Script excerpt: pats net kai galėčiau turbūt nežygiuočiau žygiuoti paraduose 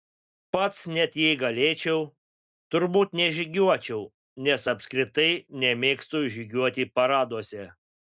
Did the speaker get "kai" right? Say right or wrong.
wrong